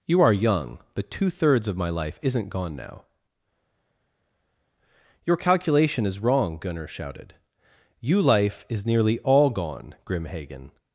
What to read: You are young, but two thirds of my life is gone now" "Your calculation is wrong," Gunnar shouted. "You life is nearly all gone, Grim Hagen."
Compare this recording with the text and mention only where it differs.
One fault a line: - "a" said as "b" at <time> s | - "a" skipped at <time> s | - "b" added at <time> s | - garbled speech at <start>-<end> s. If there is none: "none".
- "is" said as "isn't" at 2.2 s